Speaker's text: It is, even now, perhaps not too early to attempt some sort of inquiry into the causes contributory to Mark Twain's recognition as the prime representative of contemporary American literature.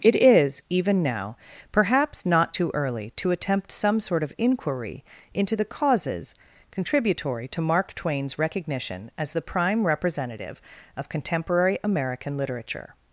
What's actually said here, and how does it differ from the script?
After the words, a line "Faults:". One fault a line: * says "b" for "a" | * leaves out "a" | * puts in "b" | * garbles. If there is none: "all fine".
It is, even now, perhaps not too early to attempt some sort of inquiry into the causes contributory to Mark Twain's recognition as the prime representative of contemporary American literature.
Faults:
all fine